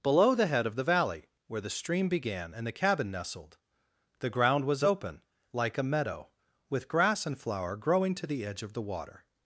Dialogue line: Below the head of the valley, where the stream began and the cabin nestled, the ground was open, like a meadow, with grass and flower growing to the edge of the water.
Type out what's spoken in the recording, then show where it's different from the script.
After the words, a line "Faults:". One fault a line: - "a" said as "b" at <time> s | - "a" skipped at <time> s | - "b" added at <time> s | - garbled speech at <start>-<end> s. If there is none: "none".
Below the head of the valley, where the stream began and the cabin nestled, the ground was open, like a meadow, with grass and flower growing to the edge of the water.
Faults:
none